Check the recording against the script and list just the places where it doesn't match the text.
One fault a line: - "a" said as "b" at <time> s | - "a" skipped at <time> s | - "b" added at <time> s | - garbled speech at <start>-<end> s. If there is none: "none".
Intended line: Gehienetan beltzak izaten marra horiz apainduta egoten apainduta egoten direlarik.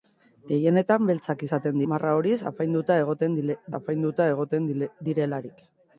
none